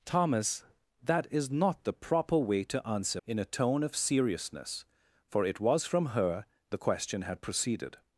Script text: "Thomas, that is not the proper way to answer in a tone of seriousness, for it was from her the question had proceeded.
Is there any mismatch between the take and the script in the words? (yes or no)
no